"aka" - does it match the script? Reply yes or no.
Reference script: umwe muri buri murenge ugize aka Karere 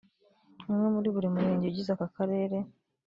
yes